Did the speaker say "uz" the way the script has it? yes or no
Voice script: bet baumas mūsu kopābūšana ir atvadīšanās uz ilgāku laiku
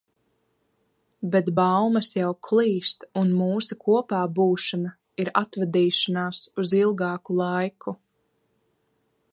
yes